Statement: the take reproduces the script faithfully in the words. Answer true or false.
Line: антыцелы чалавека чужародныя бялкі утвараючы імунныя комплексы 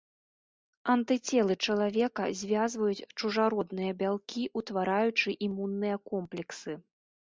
false